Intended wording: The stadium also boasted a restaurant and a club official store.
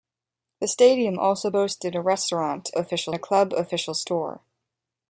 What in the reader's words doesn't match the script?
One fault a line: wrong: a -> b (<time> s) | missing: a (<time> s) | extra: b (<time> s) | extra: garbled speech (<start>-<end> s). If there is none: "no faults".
wrong: and -> official (2.7 s)